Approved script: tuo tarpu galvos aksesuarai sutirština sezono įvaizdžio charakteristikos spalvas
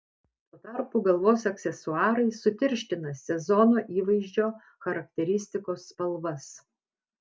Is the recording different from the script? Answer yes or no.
no